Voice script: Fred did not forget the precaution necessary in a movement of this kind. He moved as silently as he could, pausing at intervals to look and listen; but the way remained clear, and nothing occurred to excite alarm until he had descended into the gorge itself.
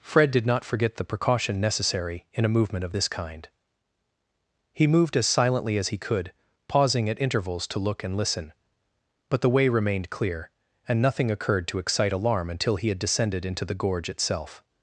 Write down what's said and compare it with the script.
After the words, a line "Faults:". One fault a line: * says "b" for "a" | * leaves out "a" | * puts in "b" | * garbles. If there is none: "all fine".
Fred did not forget the precaution necessary in a movement of this kind. He moved as silently as he could, pausing at intervals to look and listen; but the way remained clear, and nothing occurred to excite alarm until he had descended into the gorge itself.
Faults:
all fine